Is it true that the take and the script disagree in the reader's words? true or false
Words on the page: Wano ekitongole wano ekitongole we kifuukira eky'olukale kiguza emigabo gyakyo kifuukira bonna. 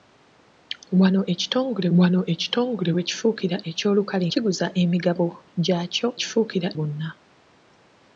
false